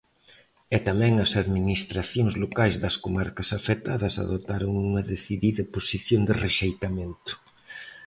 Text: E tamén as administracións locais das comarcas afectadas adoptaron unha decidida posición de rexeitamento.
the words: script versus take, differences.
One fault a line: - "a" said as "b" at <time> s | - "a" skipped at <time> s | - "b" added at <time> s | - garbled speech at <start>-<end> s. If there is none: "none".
none